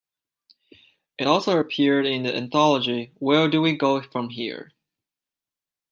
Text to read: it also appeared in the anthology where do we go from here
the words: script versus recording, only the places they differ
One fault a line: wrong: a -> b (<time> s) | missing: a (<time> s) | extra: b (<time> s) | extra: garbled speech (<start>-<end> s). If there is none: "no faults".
no faults